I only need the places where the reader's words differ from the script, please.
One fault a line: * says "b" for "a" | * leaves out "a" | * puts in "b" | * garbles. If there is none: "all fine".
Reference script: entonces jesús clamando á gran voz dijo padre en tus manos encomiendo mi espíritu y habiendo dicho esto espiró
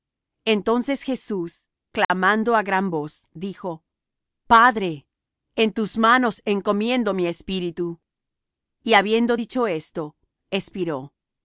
all fine